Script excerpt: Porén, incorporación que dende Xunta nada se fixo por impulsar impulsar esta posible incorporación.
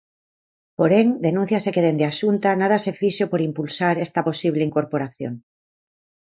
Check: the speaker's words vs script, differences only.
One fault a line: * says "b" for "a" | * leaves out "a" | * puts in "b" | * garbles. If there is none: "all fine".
* says "denúnciase" for "incorporación"
* puts in "a"
* leaves out "impulsar"